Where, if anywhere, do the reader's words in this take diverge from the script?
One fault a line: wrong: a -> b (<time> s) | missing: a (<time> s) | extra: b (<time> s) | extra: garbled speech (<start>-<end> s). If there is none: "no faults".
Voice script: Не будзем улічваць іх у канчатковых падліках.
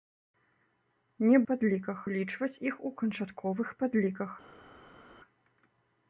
wrong: будзем -> падліках (1.5 s)